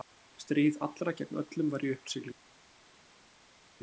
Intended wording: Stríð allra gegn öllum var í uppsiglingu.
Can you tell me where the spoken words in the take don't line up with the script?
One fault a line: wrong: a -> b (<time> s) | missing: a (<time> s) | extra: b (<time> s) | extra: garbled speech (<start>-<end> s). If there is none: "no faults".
no faults